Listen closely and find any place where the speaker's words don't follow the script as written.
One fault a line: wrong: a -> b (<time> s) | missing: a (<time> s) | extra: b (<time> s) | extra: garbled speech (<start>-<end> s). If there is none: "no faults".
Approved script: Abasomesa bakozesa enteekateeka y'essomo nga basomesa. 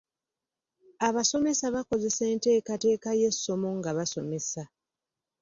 no faults